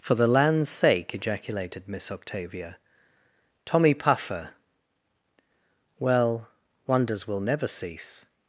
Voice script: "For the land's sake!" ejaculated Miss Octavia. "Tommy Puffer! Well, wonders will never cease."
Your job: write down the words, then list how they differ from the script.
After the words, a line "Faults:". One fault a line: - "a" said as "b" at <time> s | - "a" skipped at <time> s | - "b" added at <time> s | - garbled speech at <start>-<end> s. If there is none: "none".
"For the land's sake!" ejaculated Miss Octavia. "Tommy Puffer! Well, wonders will never cease."
Faults:
none